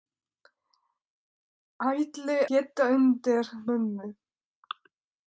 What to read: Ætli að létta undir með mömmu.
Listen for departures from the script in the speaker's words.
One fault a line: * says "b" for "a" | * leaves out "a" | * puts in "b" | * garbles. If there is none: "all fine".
* leaves out "að"
* leaves out "með"